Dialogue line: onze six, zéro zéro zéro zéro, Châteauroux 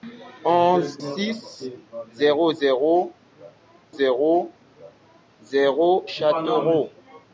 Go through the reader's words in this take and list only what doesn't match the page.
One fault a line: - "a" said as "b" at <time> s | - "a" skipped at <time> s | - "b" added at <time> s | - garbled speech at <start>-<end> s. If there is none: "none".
none